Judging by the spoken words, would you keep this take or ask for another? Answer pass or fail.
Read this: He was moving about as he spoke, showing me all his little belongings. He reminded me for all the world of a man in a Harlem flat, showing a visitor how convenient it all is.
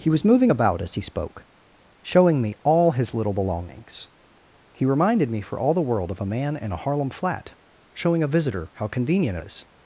fail